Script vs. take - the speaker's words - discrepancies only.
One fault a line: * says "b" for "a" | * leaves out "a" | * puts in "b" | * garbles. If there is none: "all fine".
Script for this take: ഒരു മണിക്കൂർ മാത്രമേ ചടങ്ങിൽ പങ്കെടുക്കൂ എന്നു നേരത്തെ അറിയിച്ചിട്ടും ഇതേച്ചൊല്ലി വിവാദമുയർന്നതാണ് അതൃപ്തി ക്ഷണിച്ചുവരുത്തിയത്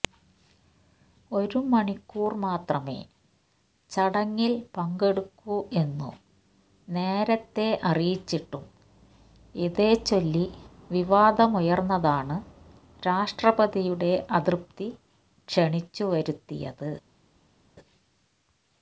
* puts in "രാഷ്ട്രപതിയുടെ"